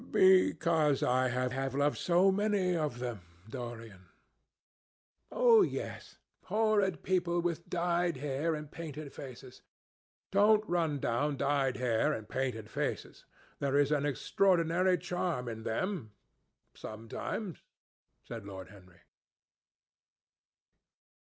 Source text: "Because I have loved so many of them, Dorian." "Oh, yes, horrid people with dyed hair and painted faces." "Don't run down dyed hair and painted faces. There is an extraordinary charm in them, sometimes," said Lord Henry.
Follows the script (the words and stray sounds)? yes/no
no